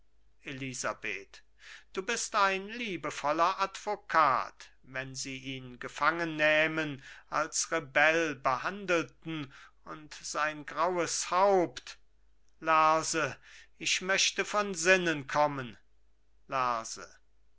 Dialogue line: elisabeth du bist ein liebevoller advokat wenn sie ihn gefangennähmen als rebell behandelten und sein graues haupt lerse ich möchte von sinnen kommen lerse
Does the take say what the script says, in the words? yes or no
yes